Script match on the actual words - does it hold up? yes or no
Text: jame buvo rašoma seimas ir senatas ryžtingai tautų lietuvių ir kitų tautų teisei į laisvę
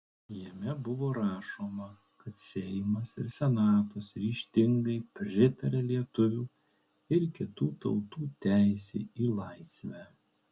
no